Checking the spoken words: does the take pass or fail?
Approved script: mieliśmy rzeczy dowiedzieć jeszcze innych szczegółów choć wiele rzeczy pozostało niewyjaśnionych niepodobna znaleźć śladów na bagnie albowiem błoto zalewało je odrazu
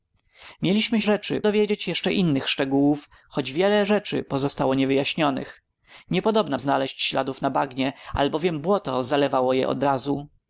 pass